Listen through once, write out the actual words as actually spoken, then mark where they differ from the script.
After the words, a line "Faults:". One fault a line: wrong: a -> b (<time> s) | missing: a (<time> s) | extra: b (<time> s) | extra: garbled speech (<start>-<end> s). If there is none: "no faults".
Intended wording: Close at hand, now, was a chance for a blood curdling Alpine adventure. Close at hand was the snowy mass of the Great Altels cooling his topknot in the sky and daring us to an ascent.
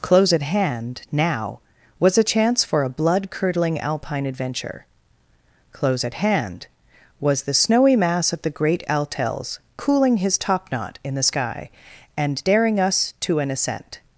Close at hand, now, was a chance for a blood curdling Alpine adventure. Close at hand was the snowy mass of the Great Altels cooling his topknot in the sky and daring us to an ascent.
Faults:
no faults